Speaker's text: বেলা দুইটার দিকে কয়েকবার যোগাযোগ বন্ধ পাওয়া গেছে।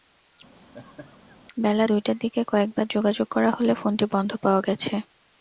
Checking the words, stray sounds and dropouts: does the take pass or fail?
fail